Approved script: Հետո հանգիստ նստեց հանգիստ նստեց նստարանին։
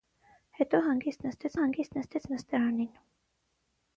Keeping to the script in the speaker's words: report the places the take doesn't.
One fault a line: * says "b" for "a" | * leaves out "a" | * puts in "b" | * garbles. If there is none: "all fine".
all fine